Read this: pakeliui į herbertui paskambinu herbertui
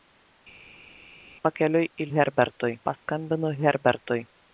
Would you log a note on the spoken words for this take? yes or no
no